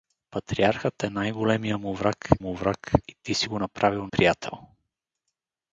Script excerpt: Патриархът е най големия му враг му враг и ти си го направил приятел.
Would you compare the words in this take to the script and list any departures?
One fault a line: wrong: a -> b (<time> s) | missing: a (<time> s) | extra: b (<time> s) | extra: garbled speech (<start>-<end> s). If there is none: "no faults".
no faults